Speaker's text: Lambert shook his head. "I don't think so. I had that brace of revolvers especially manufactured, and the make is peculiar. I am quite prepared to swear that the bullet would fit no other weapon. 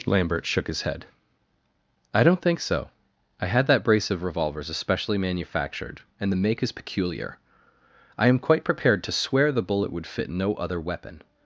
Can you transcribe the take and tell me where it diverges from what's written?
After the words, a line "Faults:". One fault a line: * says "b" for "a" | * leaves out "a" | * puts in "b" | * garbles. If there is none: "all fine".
Lambert shook his head. "I don't think so. I had that brace of revolvers especially manufactured, and the make is peculiar. I am quite prepared to swear the bullet would fit no other weapon.
Faults:
* leaves out "that"